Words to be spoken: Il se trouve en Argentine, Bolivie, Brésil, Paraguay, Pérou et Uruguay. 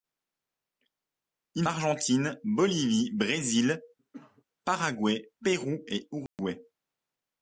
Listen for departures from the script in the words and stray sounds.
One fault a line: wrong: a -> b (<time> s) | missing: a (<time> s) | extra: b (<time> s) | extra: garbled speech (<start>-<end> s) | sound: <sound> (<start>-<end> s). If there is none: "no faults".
missing: se trouve en (1.7 s)
sound: cough (4.0-4.4 s)
sound: dropout (6.3-6.4 s)